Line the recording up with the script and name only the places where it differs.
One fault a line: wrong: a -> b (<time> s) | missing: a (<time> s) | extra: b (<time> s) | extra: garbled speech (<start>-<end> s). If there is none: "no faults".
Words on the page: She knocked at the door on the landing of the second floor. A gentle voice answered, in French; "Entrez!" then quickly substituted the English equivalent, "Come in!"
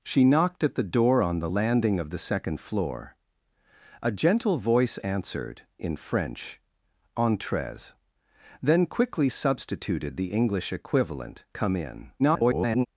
extra: garbled speech (12.2-12.9 s)